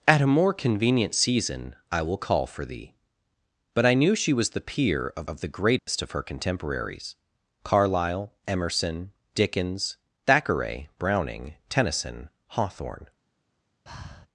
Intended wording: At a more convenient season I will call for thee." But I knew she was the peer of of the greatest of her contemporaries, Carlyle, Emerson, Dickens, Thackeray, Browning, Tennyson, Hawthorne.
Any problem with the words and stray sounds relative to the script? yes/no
yes